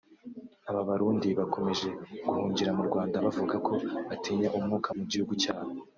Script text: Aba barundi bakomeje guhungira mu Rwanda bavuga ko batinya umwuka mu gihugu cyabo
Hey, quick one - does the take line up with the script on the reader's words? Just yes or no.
yes